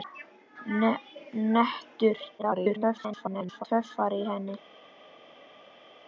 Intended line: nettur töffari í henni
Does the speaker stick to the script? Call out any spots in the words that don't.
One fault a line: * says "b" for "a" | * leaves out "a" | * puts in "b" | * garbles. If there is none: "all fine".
* garbles